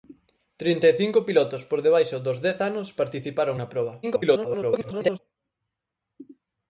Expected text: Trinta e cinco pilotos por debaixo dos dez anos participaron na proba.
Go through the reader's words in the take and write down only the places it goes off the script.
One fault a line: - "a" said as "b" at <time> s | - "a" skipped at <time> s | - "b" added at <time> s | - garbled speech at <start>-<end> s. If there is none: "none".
- garbled speech at 4.0-5.2 s